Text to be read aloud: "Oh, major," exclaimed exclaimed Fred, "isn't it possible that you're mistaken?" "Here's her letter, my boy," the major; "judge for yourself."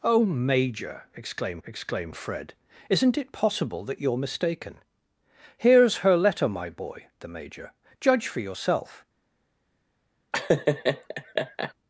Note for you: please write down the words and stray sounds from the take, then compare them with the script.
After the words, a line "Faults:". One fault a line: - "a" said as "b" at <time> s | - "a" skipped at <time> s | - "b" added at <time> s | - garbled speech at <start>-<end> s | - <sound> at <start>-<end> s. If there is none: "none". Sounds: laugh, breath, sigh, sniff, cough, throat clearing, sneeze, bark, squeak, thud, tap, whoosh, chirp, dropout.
"Oh, major," exclaimed exclaimed Fred, "isn't it possible that you're mistaken?" "Here's her letter, my boy," the major; "judge for yourself."
Faults:
- laugh at 10.3-11.7 s